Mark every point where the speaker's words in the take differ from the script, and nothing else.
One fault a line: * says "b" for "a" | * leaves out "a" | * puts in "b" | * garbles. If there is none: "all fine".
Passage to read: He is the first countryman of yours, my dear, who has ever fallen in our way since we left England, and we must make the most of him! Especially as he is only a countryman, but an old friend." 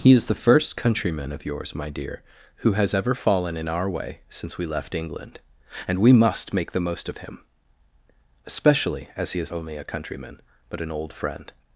all fine